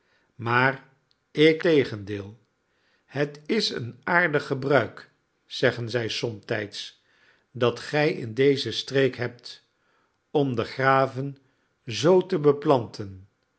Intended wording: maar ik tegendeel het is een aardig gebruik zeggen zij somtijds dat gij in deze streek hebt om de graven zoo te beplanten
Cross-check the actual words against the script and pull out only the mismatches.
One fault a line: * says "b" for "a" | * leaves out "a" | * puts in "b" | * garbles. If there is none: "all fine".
all fine